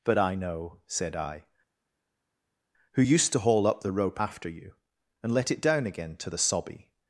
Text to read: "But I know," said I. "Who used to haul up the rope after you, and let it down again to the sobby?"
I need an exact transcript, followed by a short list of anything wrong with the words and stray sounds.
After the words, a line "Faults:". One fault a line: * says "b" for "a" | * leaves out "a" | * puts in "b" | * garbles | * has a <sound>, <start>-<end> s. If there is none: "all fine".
"But I know," said I. "Who used to haul up the rope after you, and let it down again to the sobby?"
Faults:
all fine